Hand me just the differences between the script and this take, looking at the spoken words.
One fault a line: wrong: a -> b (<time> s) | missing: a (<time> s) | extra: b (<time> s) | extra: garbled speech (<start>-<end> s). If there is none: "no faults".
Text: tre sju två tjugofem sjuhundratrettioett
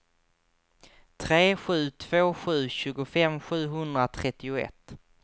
extra: sju (2.3 s)